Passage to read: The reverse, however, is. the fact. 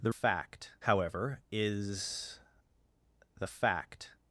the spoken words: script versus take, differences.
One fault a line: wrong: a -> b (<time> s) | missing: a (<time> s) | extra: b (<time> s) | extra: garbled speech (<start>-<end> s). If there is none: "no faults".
wrong: reverse -> fact (0.1 s)